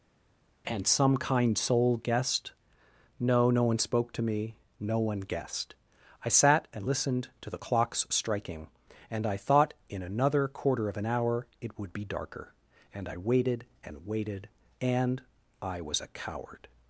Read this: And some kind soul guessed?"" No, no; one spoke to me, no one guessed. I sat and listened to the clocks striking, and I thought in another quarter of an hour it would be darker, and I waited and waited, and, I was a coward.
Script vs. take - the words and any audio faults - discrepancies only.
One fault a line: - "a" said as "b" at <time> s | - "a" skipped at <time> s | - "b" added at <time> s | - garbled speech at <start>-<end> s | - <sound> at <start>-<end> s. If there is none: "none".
none